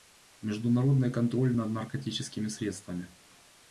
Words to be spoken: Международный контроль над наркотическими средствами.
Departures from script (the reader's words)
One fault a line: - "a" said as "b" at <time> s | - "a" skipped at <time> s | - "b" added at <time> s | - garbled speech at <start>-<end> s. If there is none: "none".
none